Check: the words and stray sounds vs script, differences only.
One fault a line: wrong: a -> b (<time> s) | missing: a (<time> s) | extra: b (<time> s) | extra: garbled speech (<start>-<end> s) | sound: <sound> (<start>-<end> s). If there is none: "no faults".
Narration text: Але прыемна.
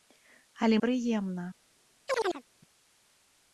sound: chirp (2.1-2.4 s)